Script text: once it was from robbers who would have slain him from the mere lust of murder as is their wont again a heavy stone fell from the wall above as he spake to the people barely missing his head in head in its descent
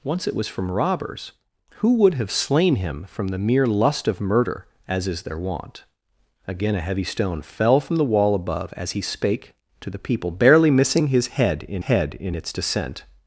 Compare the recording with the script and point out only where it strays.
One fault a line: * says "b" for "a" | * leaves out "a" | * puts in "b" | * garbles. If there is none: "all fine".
all fine